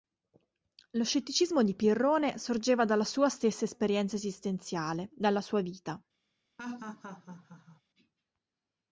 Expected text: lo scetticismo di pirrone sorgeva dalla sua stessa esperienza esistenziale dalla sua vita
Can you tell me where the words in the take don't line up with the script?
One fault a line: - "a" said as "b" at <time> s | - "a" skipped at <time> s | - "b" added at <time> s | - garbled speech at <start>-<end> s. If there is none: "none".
none